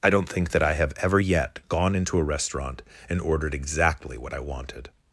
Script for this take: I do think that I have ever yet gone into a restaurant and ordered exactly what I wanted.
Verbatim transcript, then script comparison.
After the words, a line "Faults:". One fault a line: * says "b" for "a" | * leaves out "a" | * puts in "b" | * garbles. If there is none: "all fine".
I don't think that I have ever yet gone into a restaurant and ordered exactly what I wanted.
Faults:
* says "don't" for "do"